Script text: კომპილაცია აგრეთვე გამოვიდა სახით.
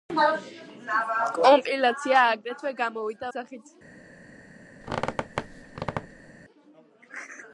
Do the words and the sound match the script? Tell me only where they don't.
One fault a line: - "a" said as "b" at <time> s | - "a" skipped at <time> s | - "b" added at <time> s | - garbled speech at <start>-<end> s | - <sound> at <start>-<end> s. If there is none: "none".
- squeak at 4.8-6.3 s